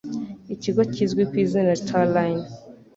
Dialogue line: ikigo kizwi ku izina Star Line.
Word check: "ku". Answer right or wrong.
right